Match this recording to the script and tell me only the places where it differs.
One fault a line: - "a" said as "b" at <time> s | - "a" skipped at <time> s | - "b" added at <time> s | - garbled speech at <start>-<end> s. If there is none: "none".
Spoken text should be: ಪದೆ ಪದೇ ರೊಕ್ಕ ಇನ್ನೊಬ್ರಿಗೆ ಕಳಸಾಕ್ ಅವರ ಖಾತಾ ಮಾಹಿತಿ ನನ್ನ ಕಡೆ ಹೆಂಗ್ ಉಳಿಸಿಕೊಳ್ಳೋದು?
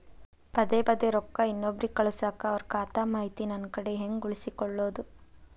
none